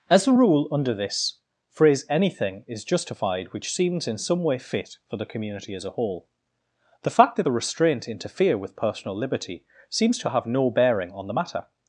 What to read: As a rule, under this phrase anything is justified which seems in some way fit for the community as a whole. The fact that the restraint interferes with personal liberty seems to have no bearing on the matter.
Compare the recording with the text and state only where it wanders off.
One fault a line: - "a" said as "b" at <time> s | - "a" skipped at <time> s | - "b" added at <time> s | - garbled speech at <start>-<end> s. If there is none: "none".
- "interferes" said as "interfere" at 8.1 s